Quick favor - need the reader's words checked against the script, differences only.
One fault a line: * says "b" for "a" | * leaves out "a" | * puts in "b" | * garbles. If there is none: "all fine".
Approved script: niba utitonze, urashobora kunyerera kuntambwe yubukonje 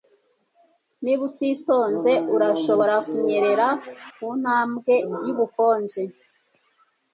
all fine